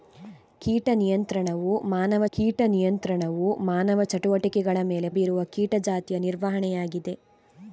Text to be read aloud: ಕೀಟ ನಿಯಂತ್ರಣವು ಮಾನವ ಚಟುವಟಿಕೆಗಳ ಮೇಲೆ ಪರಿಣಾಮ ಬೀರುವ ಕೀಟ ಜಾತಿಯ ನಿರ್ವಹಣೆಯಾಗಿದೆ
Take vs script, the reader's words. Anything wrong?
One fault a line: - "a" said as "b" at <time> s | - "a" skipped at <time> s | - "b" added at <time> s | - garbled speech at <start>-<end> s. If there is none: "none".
- "ಕೀಟ ನಿಯಂತ್ರಣವು ಮಾನವ" added at 2.3 s
- "ಪರಿಣಾಮ" skipped at 5.1 s